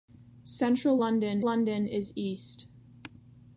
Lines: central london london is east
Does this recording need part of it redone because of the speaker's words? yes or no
no